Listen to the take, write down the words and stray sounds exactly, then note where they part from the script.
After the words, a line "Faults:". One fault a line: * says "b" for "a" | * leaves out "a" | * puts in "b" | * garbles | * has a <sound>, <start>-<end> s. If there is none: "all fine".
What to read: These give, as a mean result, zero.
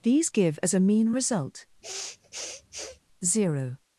These give, as a mean result, zero.
Faults:
* has a sniff, 1.8-3.0 s